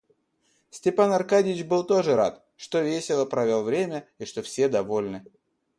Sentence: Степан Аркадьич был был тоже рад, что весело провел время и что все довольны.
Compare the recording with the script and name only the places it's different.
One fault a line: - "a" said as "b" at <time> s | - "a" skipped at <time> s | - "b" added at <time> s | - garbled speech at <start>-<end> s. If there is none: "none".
- "был" skipped at 1.8 s